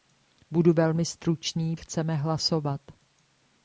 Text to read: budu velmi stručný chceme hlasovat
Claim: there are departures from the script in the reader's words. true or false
false